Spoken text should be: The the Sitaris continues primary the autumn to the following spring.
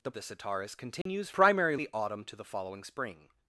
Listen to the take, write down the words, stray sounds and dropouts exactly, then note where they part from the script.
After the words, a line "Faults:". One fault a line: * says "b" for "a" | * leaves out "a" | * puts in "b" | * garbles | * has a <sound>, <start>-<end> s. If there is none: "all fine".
The the Sitaris continues primary the autumn to the following spring.
Faults:
* has a dropout, 1.0-1.1 s